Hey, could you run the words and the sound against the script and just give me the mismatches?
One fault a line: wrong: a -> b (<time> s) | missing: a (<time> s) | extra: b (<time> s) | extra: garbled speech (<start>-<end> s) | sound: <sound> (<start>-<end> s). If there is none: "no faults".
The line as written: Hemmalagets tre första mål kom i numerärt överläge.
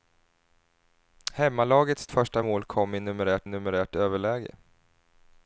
missing: tre (2.1 s)
extra: numerärt (3.4 s)